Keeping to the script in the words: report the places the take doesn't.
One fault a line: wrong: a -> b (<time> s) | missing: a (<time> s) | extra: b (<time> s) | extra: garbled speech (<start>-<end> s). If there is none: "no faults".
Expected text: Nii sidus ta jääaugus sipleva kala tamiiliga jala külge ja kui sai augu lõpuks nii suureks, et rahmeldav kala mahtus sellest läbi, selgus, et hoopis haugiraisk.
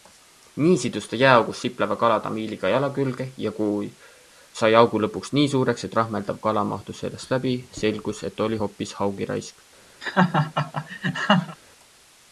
extra: oli (8.5 s)